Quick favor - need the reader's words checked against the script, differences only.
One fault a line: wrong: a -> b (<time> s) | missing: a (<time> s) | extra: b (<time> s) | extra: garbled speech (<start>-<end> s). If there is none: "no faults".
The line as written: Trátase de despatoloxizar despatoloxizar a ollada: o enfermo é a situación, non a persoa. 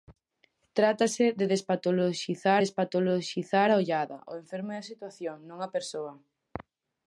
no faults